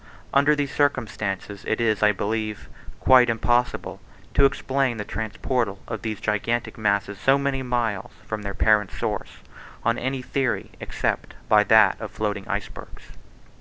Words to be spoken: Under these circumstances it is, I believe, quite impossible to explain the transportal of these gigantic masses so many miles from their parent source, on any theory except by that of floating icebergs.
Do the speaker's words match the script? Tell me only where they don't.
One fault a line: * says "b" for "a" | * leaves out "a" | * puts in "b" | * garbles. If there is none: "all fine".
all fine